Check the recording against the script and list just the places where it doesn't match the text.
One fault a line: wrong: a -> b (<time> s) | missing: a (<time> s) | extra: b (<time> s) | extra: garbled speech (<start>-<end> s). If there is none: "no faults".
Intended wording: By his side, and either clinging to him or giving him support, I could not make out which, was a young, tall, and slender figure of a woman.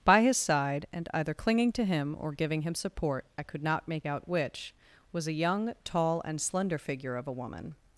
no faults